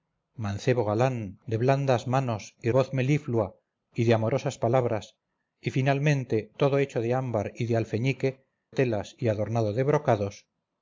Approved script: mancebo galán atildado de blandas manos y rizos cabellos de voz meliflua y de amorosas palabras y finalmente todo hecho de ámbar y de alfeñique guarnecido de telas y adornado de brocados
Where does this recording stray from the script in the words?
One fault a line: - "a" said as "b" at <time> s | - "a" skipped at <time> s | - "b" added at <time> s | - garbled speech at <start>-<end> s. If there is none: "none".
- "atildado" skipped at 1.1 s
- "rizos cabellos de" skipped at 2.7 s
- "guarnecido de" skipped at 8.5 s